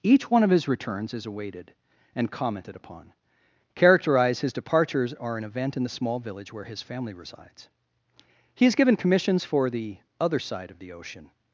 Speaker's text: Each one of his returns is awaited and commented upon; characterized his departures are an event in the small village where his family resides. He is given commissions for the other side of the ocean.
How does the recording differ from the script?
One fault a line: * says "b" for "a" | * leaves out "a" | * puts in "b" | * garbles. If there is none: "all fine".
all fine